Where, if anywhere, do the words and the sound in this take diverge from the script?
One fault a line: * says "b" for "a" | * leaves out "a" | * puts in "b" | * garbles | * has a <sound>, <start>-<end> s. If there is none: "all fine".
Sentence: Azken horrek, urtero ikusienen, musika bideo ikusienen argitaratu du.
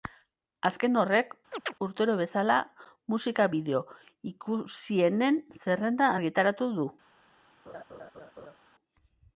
* has a chirp, 1.5-1.7 s
* says "bezala" for "ikusienen"
* puts in "zerrenda"
* has a laugh, 7.7-8.6 s